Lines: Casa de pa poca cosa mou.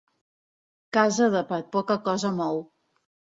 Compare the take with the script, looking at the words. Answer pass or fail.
pass